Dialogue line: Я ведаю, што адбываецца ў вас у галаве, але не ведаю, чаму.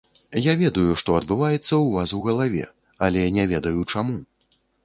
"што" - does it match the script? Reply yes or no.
yes